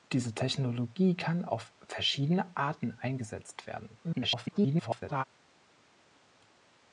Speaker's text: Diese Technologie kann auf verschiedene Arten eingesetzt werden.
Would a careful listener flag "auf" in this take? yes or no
no